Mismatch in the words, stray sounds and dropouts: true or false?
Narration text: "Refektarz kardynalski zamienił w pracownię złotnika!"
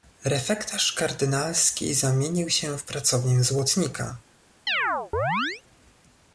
true